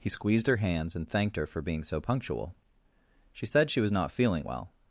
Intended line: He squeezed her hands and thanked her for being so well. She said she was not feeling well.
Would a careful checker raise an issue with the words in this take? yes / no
yes